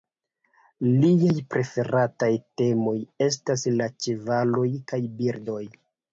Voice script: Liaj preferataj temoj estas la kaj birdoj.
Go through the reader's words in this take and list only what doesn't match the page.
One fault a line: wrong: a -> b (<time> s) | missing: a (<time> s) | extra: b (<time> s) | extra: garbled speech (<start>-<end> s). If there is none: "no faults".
extra: ĉevaloj (4.1 s)